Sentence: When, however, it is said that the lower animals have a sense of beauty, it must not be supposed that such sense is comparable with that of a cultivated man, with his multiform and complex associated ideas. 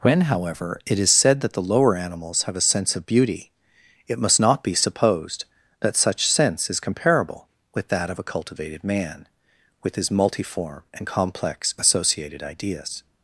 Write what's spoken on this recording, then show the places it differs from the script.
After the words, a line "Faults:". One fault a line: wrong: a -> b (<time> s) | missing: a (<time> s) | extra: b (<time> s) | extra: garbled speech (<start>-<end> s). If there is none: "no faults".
When, however, it is said that the lower animals have a sense of beauty, it must not be supposed that such sense is comparable with that of a cultivated man, with his multiform and complex associated ideas.
Faults:
no faults